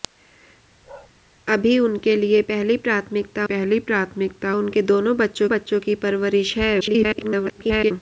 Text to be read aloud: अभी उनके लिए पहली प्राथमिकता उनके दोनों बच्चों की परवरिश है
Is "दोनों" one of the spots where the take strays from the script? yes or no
no